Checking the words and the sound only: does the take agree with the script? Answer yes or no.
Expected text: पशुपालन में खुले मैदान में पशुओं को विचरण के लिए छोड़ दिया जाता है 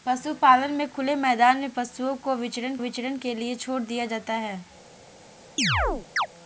no